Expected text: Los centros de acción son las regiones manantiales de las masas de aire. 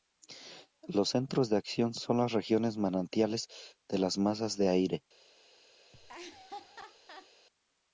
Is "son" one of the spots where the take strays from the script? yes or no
no